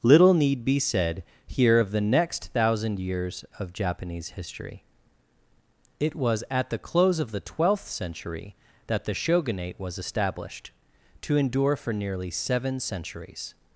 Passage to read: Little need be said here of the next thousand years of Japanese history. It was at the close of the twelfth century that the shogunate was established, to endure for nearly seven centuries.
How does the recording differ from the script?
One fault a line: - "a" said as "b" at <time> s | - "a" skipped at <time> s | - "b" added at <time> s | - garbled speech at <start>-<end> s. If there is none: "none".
none